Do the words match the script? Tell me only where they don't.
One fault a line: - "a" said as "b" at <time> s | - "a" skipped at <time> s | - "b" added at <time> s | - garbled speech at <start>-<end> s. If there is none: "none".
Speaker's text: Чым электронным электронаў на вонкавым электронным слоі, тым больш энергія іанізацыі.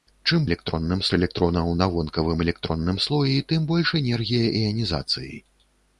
none